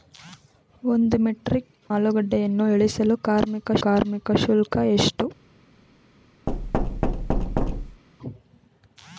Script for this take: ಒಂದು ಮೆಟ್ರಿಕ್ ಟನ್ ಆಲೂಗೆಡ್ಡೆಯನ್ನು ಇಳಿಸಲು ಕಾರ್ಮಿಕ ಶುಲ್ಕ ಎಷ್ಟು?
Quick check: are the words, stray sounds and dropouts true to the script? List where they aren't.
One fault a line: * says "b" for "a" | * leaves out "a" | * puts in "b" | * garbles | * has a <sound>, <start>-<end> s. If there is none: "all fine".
* leaves out "ಟನ್"
* puts in "ಕಾರ್ಮಿಕ"
* has a thud, 6.5-8.0 s